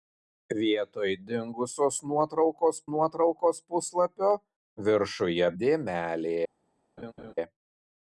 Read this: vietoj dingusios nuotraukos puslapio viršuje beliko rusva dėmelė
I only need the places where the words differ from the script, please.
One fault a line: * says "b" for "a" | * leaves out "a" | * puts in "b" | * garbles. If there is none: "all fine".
* puts in "nuotraukos"
* leaves out "beliko rusva"